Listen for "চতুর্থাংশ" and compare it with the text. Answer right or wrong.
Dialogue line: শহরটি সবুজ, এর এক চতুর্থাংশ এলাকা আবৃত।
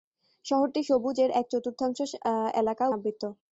right